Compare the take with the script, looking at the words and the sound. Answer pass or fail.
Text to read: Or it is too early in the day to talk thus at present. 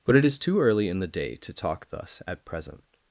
fail